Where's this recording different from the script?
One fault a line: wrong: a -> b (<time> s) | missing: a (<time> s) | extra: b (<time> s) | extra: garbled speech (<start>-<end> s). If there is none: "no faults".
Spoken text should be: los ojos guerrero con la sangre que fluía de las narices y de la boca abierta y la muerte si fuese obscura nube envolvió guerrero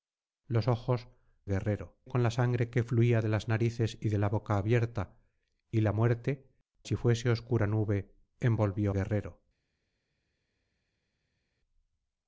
no faults